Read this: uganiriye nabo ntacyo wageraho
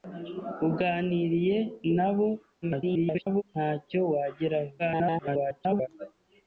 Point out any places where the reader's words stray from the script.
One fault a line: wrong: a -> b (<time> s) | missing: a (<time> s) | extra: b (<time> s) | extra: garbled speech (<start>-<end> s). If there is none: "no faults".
extra: garbled speech (2.6-3.4 s)
extra: garbled speech (4.8-5.9 s)